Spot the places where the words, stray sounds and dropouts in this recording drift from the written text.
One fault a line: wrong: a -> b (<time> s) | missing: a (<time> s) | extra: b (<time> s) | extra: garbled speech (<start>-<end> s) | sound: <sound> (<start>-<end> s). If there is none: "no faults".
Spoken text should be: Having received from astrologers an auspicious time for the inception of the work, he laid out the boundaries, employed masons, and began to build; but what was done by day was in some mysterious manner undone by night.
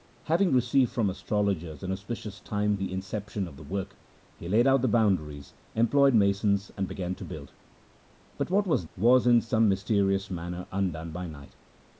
missing: for (2.8 s)
missing: done by day (8.8 s)